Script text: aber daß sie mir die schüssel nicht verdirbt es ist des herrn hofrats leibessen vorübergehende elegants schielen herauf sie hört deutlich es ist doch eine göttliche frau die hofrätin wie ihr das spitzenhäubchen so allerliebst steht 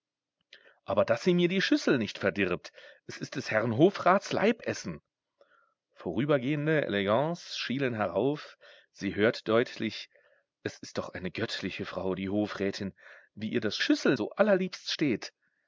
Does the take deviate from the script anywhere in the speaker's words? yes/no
yes